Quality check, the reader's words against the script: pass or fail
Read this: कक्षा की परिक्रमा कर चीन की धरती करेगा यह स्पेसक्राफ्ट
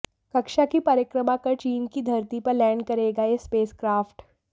fail